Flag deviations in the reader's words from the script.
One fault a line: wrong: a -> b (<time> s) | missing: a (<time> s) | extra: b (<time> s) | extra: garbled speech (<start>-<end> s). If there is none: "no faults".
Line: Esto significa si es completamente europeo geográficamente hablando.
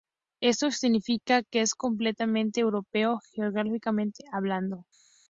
wrong: si -> que (1.4 s)